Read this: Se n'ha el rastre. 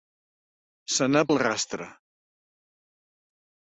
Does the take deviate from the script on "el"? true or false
false